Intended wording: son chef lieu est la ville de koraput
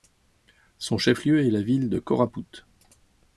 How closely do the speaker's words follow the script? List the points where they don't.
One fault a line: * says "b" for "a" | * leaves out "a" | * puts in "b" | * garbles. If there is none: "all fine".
all fine